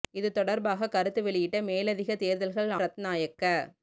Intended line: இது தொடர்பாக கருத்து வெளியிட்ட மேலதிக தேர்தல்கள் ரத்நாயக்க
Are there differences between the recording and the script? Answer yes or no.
no